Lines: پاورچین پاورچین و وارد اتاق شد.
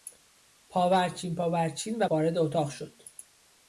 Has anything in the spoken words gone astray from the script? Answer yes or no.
no